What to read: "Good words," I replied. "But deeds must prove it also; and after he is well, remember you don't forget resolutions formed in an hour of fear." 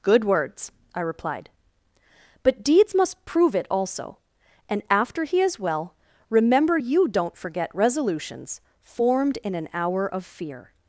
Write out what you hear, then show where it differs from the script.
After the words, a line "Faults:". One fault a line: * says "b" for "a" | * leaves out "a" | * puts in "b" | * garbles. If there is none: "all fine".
"Good words," I replied. "But deeds must prove it also; and after he is well, remember you don't forget resolutions formed in an hour of fear."
Faults:
all fine